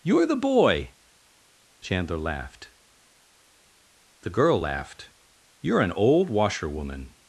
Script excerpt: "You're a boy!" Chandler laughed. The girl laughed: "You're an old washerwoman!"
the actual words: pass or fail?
fail